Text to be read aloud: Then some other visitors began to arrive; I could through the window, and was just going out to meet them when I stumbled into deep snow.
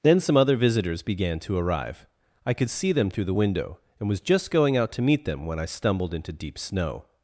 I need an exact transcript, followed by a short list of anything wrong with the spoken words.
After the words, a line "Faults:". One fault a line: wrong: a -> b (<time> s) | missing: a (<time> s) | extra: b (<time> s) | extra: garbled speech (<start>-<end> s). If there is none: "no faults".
Then some other visitors began to arrive; I could see them through the window, and was just going out to meet them when I stumbled into deep snow.
Faults:
extra: see them (2.7 s)